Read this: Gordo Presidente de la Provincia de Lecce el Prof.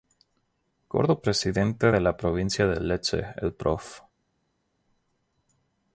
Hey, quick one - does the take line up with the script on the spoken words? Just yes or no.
yes